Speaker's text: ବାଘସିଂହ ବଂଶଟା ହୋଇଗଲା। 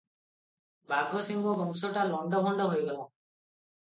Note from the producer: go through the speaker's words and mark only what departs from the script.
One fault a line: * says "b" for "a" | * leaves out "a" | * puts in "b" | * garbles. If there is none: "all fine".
* puts in "ଲଣ୍ତଭଣ୍ତ"